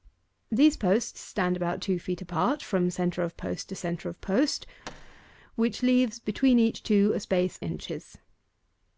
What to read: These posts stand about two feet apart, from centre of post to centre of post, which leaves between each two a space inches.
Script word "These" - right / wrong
right